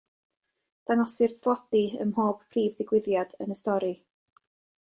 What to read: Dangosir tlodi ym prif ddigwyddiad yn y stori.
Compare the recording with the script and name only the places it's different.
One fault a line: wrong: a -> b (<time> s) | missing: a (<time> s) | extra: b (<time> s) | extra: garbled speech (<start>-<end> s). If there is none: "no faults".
extra: mhob (2.1 s)